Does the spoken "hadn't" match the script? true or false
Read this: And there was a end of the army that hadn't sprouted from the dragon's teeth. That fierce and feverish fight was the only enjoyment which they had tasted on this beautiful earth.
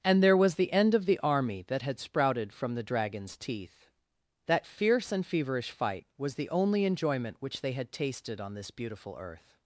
false